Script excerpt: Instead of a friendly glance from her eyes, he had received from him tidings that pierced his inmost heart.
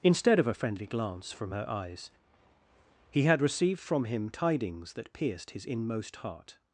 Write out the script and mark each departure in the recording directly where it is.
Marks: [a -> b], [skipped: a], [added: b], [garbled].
Instead of a friendly glance from her eyes, he had received from him tidings that pierced his inmost heart.